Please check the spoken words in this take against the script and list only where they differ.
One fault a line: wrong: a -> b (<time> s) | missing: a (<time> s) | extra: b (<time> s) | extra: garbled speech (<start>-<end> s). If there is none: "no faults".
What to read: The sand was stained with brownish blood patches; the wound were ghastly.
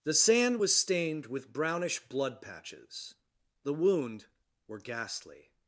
no faults